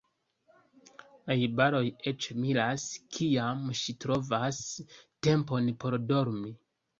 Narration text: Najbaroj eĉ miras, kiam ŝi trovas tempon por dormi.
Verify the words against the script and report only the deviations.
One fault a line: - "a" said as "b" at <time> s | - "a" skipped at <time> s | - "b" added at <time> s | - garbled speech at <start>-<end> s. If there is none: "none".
none